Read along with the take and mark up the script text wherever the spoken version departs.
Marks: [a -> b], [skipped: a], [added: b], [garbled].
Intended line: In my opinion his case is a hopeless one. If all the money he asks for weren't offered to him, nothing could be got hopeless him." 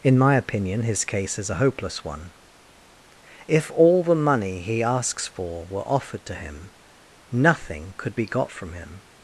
In my opinion his case is a hopeless one. If all the money he asks for [weren't -> were] offered to him, nothing could be got [hopeless -> from] him."